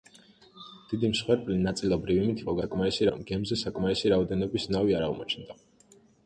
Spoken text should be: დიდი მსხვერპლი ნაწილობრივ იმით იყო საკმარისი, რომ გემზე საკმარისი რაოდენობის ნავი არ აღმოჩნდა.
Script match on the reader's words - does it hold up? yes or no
yes